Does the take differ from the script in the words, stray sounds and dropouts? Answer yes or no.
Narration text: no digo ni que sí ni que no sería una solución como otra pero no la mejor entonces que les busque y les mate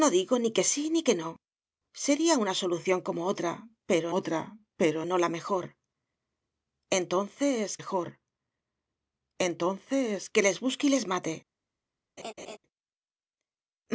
yes